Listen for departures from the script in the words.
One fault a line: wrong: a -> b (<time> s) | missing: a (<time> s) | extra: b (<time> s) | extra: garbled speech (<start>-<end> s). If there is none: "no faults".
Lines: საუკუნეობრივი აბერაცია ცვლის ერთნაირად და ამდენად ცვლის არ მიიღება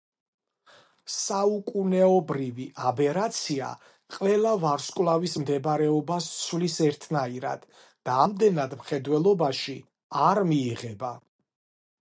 extra: ყველა ვარსკვლავის მდებარეობას (4.2 s)
wrong: ცვლის -> მხედველობაში (8.8 s)